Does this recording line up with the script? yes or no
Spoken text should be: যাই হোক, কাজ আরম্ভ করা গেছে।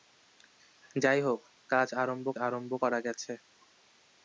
no